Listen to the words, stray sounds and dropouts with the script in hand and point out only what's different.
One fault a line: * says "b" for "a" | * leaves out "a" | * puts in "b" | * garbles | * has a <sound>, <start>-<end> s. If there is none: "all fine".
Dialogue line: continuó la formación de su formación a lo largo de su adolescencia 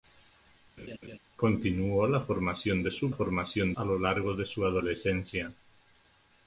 * has a laugh, 0.8-1.2 s